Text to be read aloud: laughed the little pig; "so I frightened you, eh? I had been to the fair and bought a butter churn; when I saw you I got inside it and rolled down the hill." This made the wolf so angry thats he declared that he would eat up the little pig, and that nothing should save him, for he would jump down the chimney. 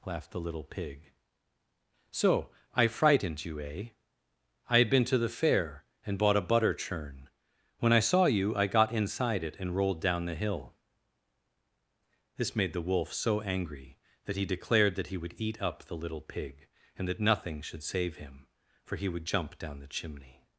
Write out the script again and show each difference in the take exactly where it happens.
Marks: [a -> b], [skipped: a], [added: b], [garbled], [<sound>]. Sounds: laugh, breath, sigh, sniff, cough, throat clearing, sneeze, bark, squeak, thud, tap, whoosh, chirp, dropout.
laughed the little pig; "so I frightened you, eh? I had been to the fair and bought a butter churn; when I saw you I got inside it and rolled down the hill." This made the wolf so angry [thats -> that] he declared that he would eat up the little pig, and that nothing should save him, for he would jump down the chimney.